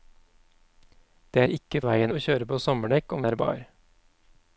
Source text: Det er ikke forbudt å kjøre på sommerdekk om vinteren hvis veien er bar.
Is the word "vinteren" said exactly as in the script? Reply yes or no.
no